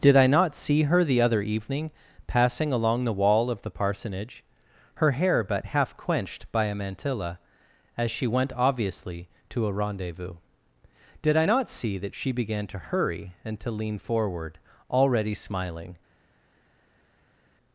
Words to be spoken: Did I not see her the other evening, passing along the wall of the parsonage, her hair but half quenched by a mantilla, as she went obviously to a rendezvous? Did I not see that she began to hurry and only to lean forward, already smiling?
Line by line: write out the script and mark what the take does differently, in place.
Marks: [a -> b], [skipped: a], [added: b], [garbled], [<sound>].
Did I not see her the other evening, passing along the wall of the parsonage, her hair but half quenched by a mantilla, as she went obviously to a rendezvous? Did I not see that she began to hurry and [skipped: only] to lean forward, already smiling?